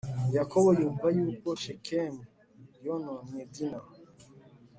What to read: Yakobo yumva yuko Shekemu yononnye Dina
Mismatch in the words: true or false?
false